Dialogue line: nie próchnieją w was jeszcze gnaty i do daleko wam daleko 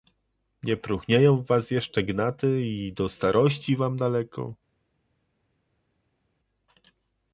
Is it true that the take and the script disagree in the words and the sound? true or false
true